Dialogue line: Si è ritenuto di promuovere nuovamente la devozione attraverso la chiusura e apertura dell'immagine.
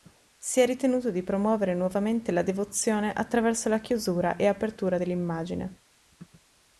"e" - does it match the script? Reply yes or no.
yes